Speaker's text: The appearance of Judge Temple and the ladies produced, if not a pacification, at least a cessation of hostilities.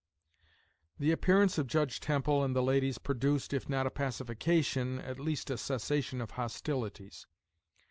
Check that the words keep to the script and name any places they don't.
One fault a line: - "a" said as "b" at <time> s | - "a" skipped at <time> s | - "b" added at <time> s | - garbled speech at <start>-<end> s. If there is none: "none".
none